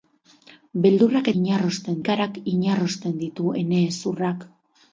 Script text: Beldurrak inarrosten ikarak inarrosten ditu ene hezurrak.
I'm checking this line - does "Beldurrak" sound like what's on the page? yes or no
yes